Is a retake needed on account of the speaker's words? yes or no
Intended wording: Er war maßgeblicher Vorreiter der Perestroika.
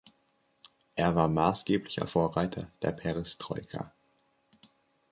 no